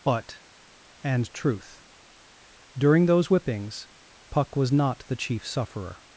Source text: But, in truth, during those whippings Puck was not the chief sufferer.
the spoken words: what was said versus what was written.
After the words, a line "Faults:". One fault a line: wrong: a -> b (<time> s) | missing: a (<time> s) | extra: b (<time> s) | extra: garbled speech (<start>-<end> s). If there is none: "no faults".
But, and truth, during those whippings Puck was not the chief sufferer.
Faults:
wrong: in -> and (1.0 s)